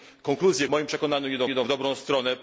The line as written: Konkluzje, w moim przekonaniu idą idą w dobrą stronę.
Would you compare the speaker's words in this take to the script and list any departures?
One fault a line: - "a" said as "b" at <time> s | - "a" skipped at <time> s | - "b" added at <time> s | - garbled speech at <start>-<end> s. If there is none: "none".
none